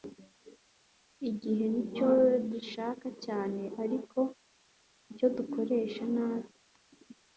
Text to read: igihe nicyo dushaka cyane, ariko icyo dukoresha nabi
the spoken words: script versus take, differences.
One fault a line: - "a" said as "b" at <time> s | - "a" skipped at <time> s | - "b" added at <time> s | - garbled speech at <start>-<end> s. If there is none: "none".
none